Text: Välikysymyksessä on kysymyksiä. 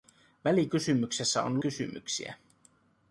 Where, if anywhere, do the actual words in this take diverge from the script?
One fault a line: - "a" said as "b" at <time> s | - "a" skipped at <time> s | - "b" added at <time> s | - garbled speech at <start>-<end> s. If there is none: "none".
none